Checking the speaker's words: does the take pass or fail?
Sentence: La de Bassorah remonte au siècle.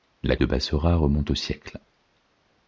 pass